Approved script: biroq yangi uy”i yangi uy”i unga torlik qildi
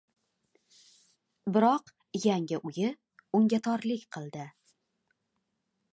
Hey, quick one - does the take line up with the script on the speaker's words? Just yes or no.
no